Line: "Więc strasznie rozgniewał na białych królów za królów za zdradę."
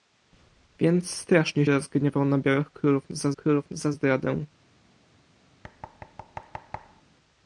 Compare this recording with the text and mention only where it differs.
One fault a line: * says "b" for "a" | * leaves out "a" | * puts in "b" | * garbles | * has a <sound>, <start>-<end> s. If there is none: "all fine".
* has a thud, 5.6-7.0 s